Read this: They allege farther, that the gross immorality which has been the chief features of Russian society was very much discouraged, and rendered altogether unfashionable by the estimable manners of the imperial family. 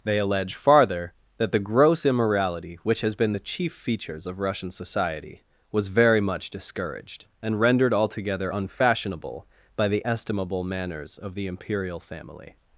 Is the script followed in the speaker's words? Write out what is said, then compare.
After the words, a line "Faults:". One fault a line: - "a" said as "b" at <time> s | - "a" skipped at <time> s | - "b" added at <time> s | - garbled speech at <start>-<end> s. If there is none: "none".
They allege farther, that the gross immorality which has been the chief features of Russian society was very much discouraged, and rendered altogether unfashionable by the estimable manners of the imperial family.
Faults:
none